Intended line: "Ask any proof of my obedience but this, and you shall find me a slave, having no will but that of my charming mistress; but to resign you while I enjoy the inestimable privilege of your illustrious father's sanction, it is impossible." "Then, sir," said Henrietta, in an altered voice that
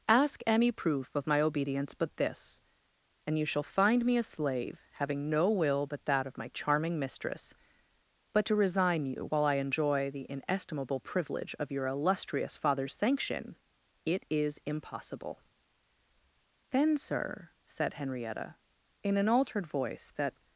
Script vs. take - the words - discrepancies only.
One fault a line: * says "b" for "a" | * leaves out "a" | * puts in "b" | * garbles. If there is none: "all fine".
all fine